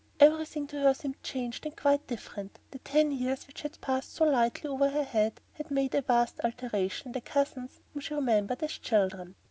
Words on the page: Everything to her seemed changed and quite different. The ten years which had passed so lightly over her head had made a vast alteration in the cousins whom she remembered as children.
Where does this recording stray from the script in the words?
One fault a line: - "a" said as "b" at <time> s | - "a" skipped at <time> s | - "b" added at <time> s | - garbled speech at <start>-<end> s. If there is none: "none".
none